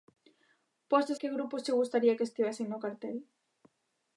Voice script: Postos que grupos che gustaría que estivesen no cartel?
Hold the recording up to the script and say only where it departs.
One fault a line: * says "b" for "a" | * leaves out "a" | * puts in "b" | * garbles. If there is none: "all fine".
all fine